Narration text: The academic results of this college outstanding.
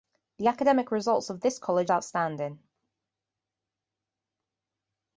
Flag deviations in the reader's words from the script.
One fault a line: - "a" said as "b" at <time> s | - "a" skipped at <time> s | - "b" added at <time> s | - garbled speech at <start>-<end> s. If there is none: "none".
none